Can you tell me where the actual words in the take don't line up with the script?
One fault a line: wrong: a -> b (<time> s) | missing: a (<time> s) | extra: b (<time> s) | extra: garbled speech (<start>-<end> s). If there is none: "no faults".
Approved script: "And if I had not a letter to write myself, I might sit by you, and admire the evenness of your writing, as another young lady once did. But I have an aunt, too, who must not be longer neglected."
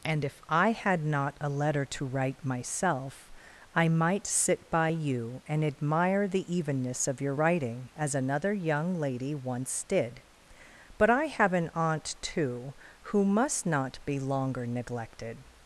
no faults